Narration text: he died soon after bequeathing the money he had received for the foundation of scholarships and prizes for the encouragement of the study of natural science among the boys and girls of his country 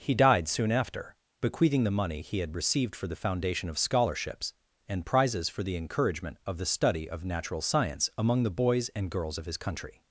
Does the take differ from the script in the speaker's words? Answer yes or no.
no